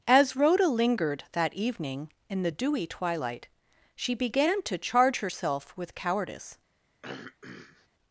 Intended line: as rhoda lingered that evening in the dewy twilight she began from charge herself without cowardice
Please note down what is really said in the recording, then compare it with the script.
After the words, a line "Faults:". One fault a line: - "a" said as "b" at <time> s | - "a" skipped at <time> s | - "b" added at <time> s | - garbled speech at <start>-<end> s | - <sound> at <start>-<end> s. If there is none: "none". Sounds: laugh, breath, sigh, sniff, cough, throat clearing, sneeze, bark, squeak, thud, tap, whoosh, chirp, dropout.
as rhoda lingered that evening in the dewy twilight she began to charge herself with cowardice
Faults:
- "from" said as "to" at 4.6 s
- "without" said as "with" at 5.8 s
- throat clearing at 7.0-7.9 s